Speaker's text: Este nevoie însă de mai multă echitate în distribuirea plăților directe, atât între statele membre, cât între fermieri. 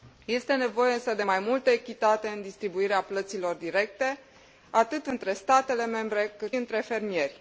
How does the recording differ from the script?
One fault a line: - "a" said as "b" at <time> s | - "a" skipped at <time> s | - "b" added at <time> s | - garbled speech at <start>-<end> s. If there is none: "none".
none